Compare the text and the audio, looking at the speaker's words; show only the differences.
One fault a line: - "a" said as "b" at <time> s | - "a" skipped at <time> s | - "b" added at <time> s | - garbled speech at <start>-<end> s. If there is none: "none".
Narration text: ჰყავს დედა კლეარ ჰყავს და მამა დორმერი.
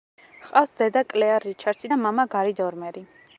- "ჰყავს" said as "რიჩარდსი" at 1.5 s
- "გარი" added at 2.4 s